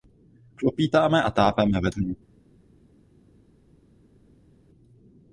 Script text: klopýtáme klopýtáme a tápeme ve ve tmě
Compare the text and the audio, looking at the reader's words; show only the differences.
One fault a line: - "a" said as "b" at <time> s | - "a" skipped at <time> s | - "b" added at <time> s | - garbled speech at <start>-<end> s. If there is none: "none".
- "klopýtáme" skipped at 1.2 s
- "ve" skipped at 1.9 s